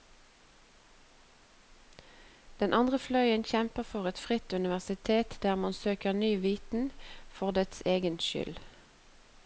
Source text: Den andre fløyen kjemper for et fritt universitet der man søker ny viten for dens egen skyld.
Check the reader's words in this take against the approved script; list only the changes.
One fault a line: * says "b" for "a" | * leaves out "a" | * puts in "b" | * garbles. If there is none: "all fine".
all fine